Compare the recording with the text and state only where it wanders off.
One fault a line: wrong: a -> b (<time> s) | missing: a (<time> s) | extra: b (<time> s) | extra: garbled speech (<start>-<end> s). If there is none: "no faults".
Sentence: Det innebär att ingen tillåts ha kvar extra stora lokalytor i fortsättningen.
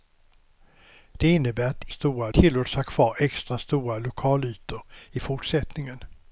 wrong: ingen -> stora (1.9 s)